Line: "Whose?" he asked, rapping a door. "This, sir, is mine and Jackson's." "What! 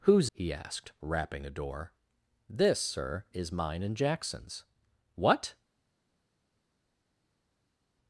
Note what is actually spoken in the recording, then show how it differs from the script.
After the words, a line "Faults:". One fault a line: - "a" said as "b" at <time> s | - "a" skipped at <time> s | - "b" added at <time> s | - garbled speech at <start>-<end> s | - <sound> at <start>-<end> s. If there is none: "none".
"Whose?" he asked, rapping a door. "This, sir, is mine and Jackson's." "What!
Faults:
none